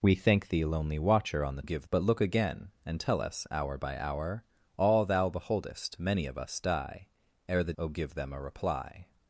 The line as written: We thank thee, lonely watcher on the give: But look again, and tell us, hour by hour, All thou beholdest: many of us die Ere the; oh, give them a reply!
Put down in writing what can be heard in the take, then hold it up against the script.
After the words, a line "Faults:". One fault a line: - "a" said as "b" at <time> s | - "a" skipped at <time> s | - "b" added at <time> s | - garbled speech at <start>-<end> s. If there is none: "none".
We thank thee, lonely watcher on the give: But look again, and tell us, hour by hour, All thou beholdest: many of us die Ere the; oh, give them a reply!
Faults:
none